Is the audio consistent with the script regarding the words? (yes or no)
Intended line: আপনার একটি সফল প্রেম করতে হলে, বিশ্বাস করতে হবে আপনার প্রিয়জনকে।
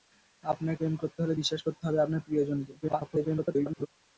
no